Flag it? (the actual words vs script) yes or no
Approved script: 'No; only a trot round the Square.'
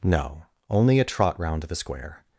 no